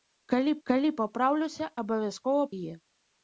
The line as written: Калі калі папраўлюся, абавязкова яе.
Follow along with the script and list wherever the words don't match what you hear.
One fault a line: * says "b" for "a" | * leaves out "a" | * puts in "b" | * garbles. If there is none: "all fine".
all fine